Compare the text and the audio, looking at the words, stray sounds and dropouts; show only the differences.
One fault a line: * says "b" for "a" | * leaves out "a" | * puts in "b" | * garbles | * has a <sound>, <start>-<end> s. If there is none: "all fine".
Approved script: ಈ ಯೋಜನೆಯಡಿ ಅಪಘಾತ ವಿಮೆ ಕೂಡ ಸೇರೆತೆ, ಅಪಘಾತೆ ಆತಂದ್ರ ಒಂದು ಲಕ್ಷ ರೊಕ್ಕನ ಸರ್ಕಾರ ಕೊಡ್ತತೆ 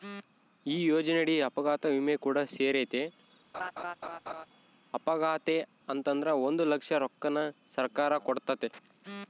* has a laugh, 3.5-4.5 s